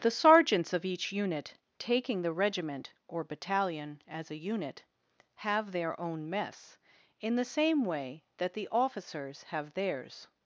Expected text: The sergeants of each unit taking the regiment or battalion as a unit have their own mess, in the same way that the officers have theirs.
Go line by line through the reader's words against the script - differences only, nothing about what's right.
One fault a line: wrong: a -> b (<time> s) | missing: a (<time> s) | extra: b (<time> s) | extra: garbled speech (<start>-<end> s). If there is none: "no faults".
no faults